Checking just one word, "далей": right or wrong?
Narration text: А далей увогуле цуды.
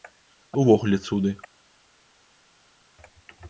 wrong